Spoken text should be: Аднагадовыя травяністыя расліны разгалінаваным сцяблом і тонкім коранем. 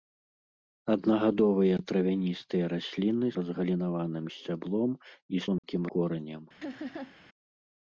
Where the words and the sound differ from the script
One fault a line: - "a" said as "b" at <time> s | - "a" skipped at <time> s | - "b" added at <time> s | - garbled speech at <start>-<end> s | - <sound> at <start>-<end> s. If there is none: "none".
- dropout at 5.6-5.6 s
- laugh at 6.6-7.2 s